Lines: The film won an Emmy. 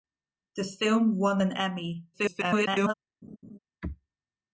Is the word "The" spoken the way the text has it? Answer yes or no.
yes